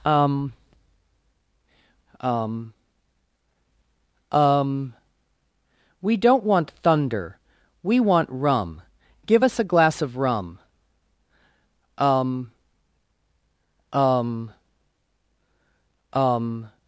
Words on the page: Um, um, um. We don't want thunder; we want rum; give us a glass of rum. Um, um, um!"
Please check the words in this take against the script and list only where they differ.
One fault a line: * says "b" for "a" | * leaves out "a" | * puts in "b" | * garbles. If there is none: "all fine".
all fine